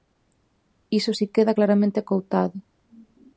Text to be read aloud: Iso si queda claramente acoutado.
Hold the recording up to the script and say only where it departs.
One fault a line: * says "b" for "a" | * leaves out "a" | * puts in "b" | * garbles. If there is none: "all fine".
all fine